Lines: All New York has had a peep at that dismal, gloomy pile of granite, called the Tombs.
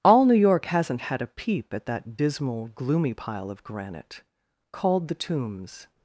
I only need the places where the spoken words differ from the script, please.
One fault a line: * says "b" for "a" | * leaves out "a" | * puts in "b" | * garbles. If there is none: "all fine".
* says "hasn't" for "has"